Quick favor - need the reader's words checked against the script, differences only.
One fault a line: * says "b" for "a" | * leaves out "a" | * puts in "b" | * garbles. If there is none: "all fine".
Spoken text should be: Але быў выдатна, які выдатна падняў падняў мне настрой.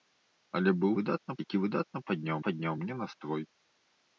all fine